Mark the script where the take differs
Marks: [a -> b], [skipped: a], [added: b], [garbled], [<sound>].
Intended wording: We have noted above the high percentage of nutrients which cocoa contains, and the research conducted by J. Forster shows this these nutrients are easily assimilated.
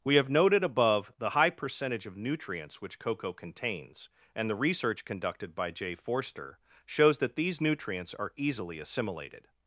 We have noted above the high percentage of nutrients which cocoa contains, and the research conducted by J. Forster shows [this -> that] these nutrients are easily assimilated.